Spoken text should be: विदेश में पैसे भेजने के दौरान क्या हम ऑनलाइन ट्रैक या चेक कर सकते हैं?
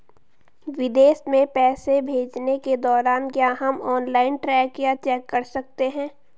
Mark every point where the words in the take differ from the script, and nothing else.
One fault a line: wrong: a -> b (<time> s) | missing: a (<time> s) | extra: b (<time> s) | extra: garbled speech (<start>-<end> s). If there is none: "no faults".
no faults